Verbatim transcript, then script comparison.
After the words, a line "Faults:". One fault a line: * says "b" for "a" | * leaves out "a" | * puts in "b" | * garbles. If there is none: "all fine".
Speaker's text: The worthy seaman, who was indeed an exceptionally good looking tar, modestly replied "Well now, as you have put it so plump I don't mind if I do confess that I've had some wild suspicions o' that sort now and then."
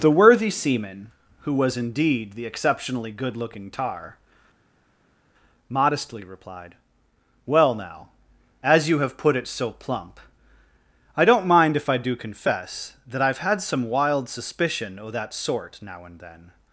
The worthy seaman, who was indeed the exceptionally good looking tar, modestly replied "Well now, as you have put it so plump I don't mind if I do confess that I've had some wild suspicion o' that sort now and then."
Faults:
* says "the" for "an"
* says "suspicion" for "suspicions"